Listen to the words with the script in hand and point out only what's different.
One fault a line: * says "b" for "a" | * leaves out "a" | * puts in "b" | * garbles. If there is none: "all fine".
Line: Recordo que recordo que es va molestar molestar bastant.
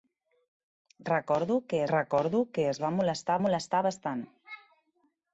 all fine